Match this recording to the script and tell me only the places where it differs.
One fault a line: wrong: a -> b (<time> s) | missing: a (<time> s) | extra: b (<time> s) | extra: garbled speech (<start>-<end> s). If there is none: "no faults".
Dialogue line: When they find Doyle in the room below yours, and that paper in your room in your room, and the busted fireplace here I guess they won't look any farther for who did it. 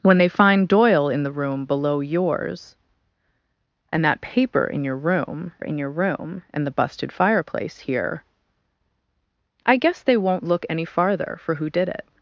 no faults